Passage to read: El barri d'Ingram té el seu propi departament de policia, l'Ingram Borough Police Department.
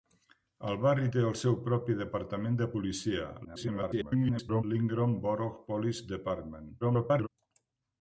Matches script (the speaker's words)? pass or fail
fail